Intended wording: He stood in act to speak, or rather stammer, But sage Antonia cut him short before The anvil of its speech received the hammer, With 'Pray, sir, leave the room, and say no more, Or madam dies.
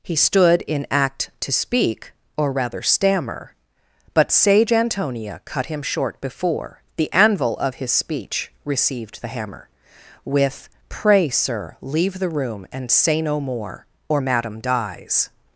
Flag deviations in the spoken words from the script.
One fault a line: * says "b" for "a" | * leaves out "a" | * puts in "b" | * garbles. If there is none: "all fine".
* says "his" for "its"